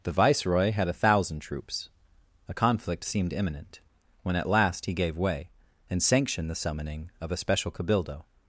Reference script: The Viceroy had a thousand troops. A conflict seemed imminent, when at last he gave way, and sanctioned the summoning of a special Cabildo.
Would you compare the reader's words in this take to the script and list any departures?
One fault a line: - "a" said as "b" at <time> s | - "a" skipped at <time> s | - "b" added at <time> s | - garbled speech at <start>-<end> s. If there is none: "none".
none